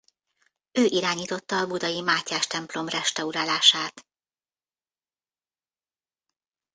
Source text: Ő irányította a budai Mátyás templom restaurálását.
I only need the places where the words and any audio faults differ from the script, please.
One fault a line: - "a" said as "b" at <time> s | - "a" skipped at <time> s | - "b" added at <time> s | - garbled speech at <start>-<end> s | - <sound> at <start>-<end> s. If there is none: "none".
none